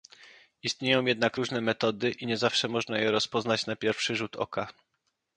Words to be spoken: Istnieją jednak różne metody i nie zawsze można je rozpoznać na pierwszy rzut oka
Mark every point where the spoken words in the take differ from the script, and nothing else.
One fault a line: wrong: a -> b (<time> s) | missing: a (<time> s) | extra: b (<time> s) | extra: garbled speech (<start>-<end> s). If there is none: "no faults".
no faults